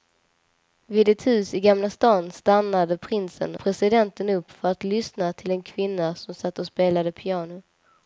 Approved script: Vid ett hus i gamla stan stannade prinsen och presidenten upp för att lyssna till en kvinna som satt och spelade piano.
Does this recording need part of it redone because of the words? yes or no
yes